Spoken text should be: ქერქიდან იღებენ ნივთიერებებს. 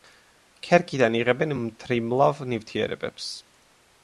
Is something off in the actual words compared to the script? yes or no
yes